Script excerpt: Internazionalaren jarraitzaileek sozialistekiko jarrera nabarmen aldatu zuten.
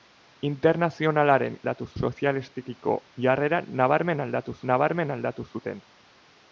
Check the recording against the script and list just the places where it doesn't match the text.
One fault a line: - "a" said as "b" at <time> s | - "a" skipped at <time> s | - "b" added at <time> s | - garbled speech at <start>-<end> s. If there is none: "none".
- "jarraitzaileek" said as "aldatu" at 1.6 s
- "nabarmen aldatu" added at 4.7 s